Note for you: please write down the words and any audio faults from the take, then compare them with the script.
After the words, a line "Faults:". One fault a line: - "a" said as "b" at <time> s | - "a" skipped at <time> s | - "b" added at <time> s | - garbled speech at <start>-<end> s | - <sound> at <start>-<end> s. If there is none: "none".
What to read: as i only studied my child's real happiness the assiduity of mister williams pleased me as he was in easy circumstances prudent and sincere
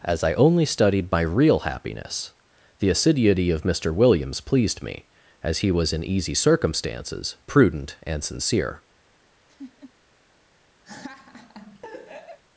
as i only studied my real happiness the assiduity of mister williams pleased me as he was in easy circumstances prudent and sincere
Faults:
- "child's" skipped at 1.2 s
- laugh at 9.5-9.9 s
- laugh at 10.9-12.4 s